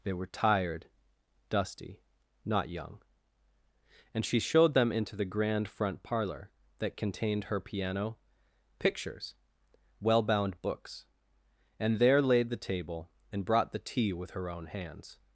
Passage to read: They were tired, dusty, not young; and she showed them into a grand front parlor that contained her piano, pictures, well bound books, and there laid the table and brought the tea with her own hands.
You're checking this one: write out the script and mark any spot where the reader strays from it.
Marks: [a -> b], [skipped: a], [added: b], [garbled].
They were tired, dusty, not young; and she showed them into [a -> the] grand front parlor that contained her piano, pictures, well bound books, and there laid the table and brought the tea with her own hands.